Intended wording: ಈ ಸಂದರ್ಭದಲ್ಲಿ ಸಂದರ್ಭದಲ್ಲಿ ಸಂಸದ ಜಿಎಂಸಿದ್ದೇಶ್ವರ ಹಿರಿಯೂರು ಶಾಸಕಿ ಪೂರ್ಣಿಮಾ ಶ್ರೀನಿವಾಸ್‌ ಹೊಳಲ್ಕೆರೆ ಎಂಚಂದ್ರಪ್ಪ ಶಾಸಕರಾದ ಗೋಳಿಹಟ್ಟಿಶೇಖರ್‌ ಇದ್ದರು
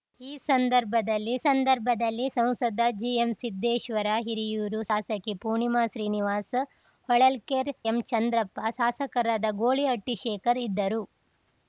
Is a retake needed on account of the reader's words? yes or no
no